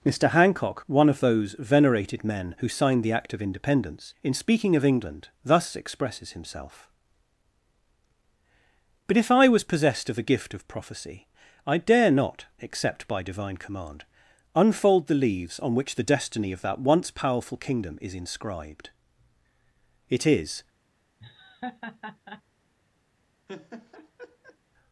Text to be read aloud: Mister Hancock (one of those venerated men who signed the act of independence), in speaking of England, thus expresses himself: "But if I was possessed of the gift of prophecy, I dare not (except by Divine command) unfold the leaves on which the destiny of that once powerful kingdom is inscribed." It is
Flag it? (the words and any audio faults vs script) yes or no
yes